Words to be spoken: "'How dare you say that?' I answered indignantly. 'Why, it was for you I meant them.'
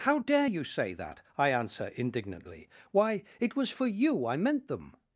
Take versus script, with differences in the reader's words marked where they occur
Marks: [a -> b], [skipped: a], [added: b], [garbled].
"'How dare you say that?' I [answered -> answer] indignantly. 'Why, it was for you I meant them.'